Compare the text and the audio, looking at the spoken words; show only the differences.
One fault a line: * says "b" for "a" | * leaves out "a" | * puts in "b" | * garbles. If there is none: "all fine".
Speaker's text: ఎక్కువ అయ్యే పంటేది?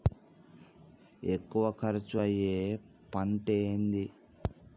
* puts in "ఖర్చు"